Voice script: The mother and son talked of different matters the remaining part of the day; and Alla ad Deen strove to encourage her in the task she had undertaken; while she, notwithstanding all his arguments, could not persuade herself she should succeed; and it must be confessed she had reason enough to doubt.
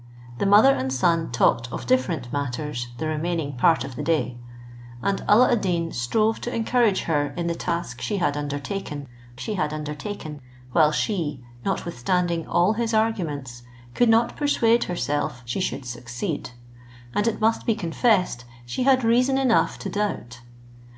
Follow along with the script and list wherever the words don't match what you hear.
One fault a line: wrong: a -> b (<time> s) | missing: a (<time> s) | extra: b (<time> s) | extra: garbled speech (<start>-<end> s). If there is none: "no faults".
extra: she had undertaken (9.4 s)